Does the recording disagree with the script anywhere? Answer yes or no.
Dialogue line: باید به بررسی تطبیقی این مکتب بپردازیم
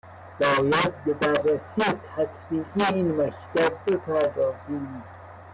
no